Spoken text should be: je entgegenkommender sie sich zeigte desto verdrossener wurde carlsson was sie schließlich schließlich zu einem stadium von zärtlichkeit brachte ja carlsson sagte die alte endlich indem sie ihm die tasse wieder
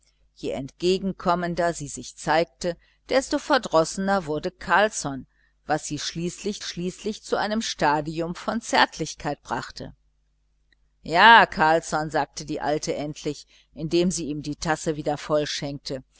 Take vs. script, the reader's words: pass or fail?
pass